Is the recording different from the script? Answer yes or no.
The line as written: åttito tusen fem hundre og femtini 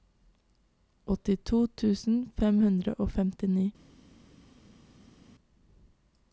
no